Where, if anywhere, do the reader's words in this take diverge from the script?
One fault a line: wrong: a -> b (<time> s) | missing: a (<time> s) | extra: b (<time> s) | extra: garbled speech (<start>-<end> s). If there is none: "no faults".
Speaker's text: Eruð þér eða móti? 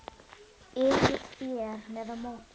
no faults